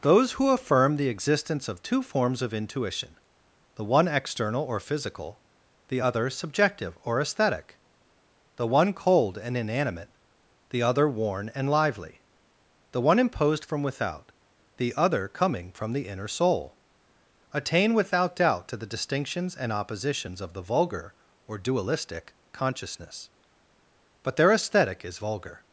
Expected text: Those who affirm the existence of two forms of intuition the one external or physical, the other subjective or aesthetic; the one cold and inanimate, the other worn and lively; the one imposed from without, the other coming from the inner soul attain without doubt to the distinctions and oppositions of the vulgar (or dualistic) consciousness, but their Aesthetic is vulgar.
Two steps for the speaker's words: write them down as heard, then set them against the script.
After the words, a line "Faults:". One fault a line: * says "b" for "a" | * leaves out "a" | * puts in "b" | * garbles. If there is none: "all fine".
Those who affirm the existence of two forms of intuition the one external or physical, the other subjective or aesthetic; the one cold and inanimate, the other worn and lively; the one imposed from without, the other coming from the inner soul attain without doubt to the distinctions and oppositions of the vulgar (or dualistic) consciousness, but their Aesthetic is vulgar.
Faults:
all fine